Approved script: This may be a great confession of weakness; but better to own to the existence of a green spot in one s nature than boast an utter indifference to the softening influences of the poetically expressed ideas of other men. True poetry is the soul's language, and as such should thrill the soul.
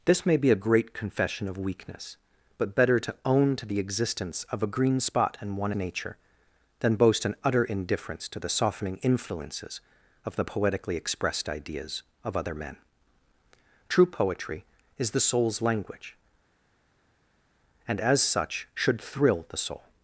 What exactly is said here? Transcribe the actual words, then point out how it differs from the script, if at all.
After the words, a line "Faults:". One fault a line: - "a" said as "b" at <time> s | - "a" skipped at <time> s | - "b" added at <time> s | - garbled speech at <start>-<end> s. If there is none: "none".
This may be a great confession of weakness; but better to own to the existence of a green spot in one nature than boast an utter indifference to the softening influences of the poetically expressed ideas of other men. True poetry is the soul's language, and as such should thrill the soul.
Faults:
- "s" skipped at 5.7 s